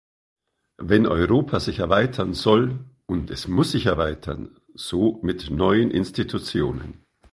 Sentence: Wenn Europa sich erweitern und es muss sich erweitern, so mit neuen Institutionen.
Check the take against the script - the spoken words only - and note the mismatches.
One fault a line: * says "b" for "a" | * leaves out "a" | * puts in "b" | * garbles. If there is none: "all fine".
* puts in "soll"